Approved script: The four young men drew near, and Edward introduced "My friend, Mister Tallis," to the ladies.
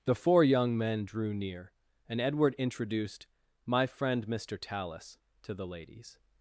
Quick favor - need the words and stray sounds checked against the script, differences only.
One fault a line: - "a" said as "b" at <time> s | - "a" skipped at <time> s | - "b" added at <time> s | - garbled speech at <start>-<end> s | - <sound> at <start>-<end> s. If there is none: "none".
none